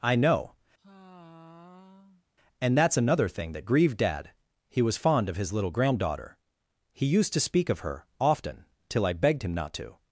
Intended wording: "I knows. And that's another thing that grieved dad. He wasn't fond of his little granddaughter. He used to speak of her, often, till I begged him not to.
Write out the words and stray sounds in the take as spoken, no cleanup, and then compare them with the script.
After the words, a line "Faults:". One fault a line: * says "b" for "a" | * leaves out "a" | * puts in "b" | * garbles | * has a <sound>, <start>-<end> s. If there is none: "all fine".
"I know. And that's another thing that grieved dad. He was fond of his little granddaughter. He used to speak of her, often, till I begged him not to.
Faults:
* says "know" for "knows"
* has a sigh, 0.8-2.3 s
* says "was" for "wasn't"